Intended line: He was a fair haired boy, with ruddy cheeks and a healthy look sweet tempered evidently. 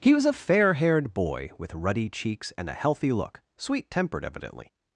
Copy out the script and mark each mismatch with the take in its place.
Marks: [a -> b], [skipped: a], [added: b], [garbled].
He was a fair haired boy, with ruddy cheeks and a healthy look sweet tempered evidently.